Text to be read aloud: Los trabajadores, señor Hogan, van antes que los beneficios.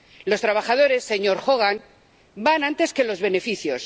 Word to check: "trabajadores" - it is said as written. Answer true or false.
true